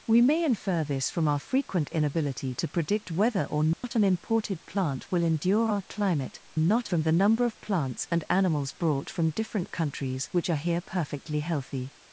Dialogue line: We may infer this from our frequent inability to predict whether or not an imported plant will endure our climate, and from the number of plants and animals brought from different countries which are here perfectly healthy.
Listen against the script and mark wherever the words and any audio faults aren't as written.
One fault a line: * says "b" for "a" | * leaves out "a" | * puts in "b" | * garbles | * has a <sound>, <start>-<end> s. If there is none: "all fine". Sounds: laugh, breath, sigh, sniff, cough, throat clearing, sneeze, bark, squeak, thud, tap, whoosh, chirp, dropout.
* has a dropout, 3.7-3.8 s
* says "not" for "and"